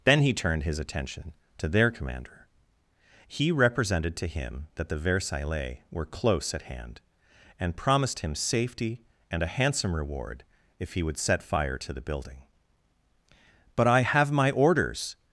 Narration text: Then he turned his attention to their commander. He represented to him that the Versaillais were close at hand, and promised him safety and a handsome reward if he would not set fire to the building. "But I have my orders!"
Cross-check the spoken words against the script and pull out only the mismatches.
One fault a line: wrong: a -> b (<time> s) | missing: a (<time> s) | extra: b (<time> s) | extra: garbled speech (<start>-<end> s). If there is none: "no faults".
missing: not (11.2 s)